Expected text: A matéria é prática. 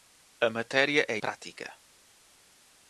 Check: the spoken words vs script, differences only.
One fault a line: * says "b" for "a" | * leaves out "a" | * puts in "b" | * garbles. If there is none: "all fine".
all fine